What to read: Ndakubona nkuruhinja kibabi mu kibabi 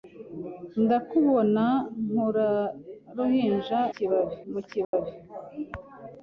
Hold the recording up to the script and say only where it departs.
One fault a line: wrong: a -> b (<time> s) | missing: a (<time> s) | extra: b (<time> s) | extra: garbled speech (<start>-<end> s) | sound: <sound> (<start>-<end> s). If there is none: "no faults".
sound: dropout (4.8-4.9 s)